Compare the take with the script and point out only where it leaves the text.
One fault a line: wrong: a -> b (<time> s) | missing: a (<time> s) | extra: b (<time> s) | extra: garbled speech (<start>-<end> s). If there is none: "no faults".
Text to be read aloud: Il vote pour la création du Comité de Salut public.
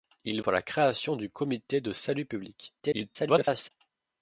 missing: vote (0.4 s)
extra: garbled speech (2.8-3.7 s)